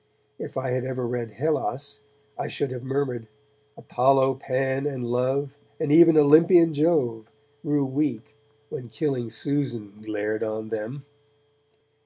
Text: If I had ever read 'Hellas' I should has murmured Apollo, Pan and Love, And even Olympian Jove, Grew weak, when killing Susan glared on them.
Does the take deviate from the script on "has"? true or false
true